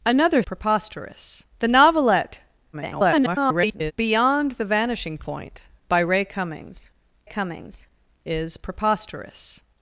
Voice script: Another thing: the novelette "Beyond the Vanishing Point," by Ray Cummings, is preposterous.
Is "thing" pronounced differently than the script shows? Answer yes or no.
yes